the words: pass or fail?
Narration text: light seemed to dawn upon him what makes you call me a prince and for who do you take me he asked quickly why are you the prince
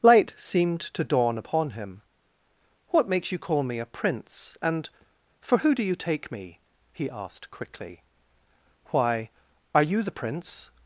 pass